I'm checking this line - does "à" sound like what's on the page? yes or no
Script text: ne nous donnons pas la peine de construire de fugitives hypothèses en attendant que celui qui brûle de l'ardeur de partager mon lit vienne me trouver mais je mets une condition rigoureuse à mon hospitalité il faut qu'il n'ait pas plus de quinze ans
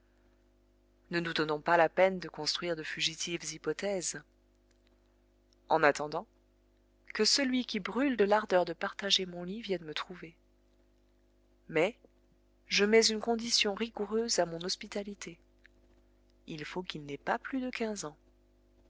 yes